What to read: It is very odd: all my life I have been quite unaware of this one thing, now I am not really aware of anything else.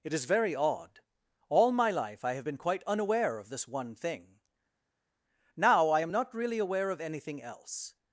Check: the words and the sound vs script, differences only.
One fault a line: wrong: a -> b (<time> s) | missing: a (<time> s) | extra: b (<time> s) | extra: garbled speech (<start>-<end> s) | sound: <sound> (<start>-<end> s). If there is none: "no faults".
no faults